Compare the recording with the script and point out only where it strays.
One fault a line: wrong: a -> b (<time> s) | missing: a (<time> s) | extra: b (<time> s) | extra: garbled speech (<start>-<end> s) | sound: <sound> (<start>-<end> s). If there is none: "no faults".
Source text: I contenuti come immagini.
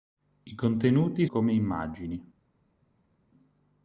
no faults